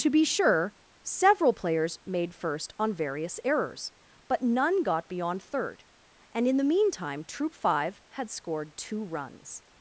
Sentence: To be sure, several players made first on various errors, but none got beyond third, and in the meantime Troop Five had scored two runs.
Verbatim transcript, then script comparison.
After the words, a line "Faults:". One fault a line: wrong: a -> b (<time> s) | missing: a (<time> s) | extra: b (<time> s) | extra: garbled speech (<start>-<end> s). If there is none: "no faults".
To be sure, several players made first on various errors, but none got beyond third, and in the meantime Troop Five had scored two runs.
Faults:
no faults